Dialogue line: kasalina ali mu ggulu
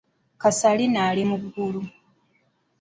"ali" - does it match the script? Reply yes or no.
yes